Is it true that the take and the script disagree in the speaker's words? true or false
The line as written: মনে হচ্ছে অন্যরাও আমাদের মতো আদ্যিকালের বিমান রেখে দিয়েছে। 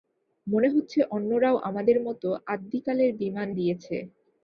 true